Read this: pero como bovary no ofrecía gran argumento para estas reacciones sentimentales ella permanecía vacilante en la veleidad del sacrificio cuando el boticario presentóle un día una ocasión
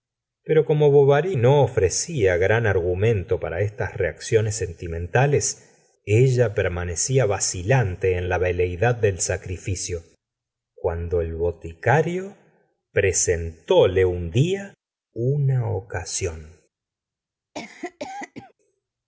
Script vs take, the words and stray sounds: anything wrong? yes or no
yes